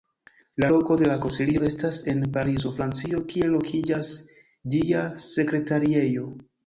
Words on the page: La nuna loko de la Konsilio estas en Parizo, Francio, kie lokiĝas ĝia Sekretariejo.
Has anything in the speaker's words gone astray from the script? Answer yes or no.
yes